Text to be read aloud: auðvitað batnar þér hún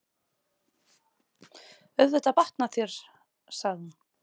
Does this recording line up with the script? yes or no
no